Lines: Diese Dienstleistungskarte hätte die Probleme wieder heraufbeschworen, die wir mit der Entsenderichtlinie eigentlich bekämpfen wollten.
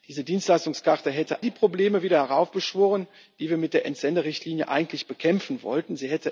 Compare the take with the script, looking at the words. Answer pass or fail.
pass